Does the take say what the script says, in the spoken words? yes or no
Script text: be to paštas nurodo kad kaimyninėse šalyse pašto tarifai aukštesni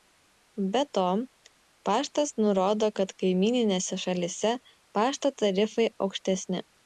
yes